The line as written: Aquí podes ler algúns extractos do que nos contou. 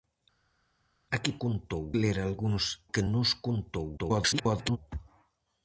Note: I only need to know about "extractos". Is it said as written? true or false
false